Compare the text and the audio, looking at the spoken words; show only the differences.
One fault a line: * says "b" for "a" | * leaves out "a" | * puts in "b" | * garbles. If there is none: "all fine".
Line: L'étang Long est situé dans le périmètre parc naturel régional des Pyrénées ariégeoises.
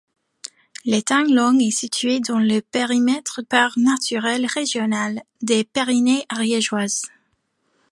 all fine